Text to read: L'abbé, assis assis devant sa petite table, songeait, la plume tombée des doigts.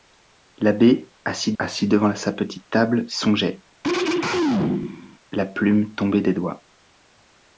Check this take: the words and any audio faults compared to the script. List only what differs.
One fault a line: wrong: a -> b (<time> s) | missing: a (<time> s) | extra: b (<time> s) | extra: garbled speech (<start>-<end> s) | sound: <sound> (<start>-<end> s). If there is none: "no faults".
sound: throat clearing (3.8-5.2 s)